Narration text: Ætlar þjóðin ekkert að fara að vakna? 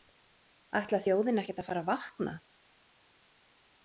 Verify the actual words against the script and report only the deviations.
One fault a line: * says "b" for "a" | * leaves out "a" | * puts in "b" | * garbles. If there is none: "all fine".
all fine